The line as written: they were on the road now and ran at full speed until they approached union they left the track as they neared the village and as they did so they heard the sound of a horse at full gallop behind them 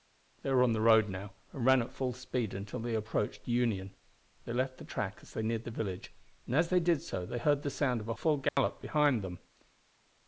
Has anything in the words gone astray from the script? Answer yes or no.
yes